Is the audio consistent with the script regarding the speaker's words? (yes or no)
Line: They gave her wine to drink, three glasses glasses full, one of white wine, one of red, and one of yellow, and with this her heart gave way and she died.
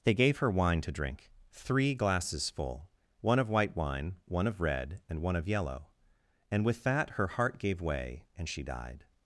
no